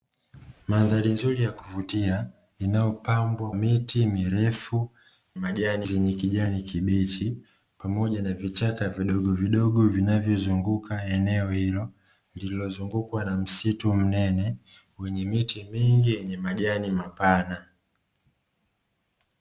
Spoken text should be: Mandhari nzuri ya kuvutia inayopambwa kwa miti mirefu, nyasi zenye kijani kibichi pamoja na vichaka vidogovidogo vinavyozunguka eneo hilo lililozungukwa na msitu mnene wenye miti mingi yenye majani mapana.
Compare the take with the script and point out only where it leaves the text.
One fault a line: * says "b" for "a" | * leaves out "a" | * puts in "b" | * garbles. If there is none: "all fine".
* leaves out "kwa"
* says "majani" for "nyasi"